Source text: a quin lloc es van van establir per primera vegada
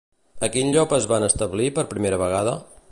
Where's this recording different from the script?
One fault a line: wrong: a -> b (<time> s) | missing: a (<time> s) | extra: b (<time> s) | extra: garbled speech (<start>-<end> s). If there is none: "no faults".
missing: van (1.3 s)